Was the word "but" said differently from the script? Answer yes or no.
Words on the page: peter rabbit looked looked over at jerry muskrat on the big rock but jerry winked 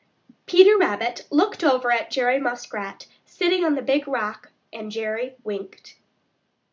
yes